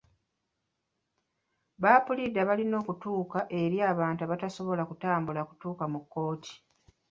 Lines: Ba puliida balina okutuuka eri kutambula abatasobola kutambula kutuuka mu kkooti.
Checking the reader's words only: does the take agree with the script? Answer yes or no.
no